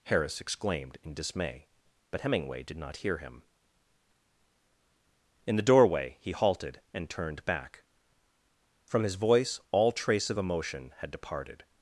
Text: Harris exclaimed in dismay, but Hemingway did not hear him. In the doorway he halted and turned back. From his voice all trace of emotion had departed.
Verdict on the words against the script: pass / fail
pass